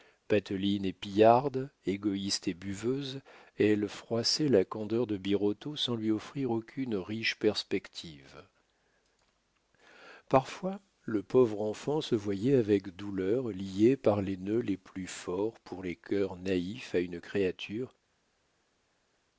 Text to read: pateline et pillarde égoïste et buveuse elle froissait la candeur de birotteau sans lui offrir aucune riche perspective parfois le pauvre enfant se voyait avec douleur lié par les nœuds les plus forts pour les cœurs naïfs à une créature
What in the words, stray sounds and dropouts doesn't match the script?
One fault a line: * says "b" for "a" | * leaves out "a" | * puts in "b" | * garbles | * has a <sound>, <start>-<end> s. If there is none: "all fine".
all fine